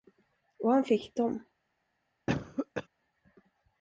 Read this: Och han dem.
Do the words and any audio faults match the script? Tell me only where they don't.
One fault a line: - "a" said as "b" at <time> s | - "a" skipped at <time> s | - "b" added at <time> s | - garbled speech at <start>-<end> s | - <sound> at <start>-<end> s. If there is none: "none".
- "fick" added at 0.8 s
- cough at 2.3-2.9 s